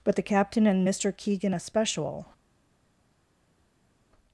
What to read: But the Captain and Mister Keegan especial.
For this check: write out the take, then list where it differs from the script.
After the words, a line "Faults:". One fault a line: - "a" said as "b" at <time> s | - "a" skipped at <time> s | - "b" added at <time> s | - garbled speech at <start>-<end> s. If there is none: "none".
But the Captain and Mister Keegan especial.
Faults:
none